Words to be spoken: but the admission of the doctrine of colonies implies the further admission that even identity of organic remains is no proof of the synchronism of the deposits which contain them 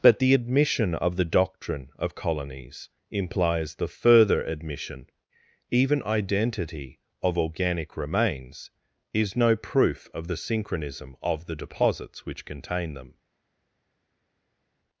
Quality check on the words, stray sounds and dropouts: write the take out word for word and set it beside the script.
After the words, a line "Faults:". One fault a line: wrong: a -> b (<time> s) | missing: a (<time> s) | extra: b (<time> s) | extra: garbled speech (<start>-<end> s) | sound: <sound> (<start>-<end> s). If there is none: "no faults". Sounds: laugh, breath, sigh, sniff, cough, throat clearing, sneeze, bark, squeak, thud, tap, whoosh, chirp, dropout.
but the admission of the doctrine of colonies implies the further admission even identity of organic remains is no proof of the synchronism of the deposits which contain them
Faults:
missing: that (5.1 s)